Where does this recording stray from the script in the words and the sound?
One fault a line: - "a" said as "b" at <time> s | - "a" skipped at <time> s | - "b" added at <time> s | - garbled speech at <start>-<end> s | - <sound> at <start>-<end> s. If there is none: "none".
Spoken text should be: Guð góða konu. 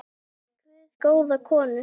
none